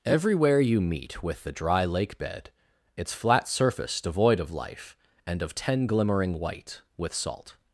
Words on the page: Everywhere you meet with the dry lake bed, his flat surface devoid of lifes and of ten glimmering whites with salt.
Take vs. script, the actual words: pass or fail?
fail